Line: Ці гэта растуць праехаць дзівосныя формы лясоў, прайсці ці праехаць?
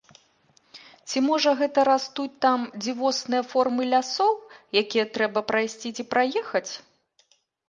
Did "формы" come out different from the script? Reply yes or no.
no